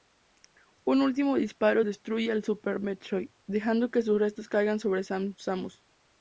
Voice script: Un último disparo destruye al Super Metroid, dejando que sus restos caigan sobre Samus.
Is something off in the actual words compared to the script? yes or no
no